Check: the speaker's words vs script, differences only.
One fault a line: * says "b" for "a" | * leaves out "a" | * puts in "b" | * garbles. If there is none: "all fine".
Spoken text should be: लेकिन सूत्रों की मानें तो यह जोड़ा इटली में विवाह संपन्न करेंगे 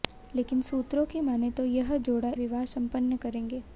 * leaves out "इटली में"